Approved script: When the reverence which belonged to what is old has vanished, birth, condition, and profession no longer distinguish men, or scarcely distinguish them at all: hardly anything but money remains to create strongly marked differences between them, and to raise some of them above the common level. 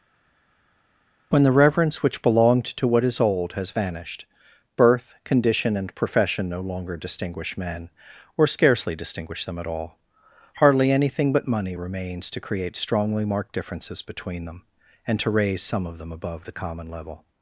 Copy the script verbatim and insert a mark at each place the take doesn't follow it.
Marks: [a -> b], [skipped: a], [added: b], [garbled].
When the reverence which belonged to what is old has vanished, birth, condition, and profession no longer distinguish men, or scarcely distinguish them at all: hardly anything but money remains to create strongly marked differences between them, and to raise some of them above the common level.